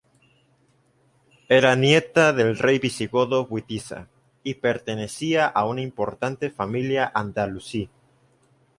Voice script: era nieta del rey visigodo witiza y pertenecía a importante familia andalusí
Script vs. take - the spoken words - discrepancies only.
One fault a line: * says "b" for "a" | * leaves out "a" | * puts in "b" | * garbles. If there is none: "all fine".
* puts in "una"